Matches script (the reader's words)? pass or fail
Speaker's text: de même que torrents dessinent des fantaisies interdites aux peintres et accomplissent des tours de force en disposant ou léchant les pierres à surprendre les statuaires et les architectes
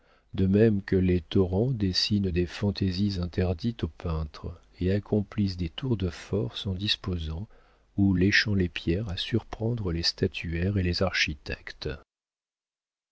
fail